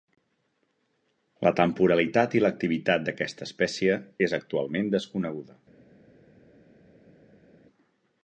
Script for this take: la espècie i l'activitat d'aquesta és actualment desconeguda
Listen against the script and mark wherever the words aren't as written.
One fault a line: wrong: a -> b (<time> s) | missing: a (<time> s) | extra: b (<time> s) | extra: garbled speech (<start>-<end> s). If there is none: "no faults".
wrong: espècie -> temporalitat (1.6 s)
extra: espècie (3.5 s)